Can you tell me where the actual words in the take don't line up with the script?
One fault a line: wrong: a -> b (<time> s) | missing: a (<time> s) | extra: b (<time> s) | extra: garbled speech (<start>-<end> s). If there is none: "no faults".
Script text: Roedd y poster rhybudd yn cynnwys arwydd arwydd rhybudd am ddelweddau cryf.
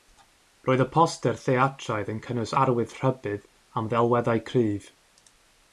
wrong: rhybudd -> theatraidd (1.4 s)
missing: arwydd (2.9 s)